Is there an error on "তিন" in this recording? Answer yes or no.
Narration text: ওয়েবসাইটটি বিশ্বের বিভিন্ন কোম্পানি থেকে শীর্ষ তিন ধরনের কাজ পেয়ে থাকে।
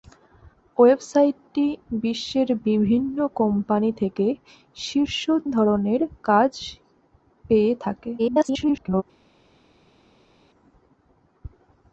yes